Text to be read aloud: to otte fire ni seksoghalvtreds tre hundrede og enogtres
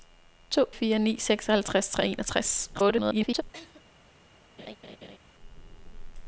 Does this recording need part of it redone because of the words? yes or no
yes